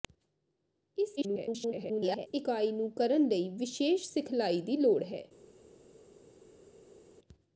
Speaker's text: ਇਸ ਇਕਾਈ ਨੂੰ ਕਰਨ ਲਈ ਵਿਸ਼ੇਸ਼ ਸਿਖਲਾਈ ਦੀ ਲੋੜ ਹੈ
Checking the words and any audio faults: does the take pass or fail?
fail